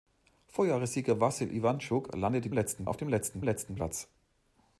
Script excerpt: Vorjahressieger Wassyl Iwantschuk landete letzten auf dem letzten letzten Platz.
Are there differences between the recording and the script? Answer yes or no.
no